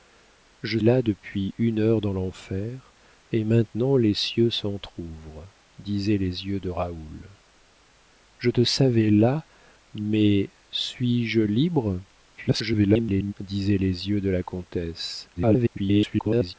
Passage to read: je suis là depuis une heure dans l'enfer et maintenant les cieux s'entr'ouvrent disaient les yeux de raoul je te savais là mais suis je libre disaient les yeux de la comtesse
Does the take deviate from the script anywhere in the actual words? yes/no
yes